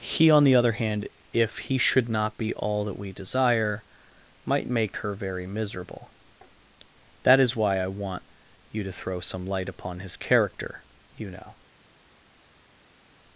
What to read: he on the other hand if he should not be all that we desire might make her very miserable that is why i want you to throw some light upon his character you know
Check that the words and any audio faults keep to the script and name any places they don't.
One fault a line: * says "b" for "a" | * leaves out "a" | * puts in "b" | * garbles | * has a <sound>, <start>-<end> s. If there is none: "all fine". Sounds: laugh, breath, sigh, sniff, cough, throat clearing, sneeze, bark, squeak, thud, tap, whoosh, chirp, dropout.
all fine